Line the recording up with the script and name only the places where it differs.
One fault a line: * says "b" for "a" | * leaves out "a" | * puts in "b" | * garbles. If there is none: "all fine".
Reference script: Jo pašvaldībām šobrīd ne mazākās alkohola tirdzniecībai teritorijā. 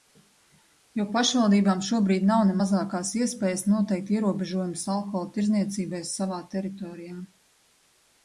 * puts in "nav"
* puts in "iespējas noteikt ierobežojumus"
* puts in "savā"